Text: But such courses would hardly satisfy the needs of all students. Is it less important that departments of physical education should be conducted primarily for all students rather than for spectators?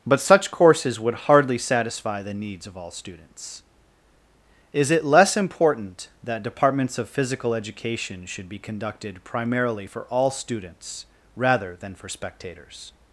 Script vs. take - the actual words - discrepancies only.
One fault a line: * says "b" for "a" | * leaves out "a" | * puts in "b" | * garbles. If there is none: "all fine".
all fine